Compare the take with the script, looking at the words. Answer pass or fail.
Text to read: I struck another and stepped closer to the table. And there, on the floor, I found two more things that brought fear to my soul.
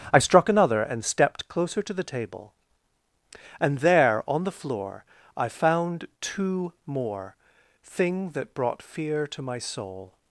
fail